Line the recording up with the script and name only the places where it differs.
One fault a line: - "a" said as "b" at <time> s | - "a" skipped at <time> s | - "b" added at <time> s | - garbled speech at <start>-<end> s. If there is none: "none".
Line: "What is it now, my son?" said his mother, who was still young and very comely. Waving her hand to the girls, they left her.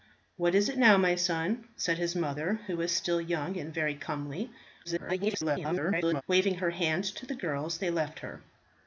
- garbled speech at 4.8-6.2 s